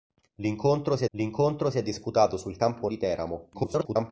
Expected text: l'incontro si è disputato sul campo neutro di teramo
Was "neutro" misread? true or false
true